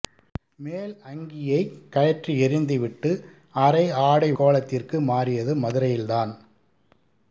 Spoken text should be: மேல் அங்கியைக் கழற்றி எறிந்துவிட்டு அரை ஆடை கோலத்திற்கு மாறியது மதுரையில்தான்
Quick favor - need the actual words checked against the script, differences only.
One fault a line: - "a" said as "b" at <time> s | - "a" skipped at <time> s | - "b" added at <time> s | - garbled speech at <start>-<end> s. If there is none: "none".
none